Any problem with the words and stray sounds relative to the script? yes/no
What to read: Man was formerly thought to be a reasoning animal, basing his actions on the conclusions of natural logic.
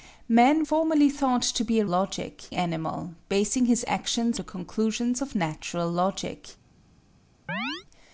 yes